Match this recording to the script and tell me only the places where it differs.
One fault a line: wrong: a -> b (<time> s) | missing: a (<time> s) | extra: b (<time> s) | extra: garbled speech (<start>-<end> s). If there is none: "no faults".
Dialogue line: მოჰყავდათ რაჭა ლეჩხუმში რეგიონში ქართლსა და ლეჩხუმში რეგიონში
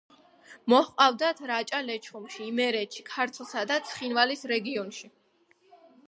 wrong: რეგიონში -> იმერეთში (2.5 s)
wrong: ლეჩხუმში -> ცხინვალის (3.9 s)